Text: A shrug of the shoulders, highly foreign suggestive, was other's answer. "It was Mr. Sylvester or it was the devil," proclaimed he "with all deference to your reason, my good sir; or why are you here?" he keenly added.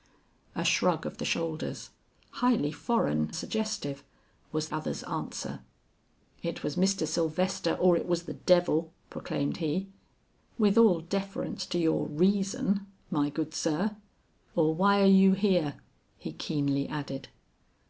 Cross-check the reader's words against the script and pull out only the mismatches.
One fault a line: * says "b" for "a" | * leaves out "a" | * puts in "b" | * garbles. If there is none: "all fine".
all fine